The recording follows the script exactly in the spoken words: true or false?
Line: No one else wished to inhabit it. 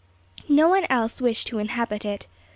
true